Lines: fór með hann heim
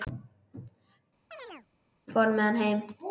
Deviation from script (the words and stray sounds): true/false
true